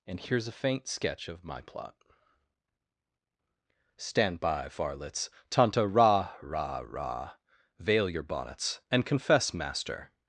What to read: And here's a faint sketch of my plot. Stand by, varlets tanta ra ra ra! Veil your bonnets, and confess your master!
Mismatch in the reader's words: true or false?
true